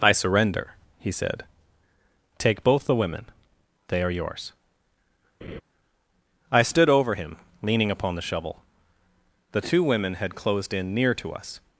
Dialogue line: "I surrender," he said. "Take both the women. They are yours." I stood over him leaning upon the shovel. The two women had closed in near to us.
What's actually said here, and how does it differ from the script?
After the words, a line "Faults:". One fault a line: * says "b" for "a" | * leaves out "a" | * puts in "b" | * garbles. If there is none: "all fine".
"I surrender," he said. "Take both the women. They are yours." I stood over him leaning upon the shovel. The two women had closed in near to us.
Faults:
all fine